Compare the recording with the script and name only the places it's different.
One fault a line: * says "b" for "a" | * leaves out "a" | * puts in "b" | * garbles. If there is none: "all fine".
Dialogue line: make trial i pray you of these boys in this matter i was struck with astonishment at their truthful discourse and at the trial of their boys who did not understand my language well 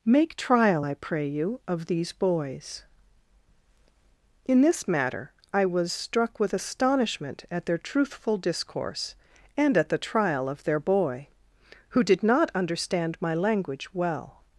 * says "boy" for "boys"